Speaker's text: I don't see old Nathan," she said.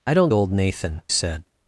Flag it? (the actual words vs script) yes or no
yes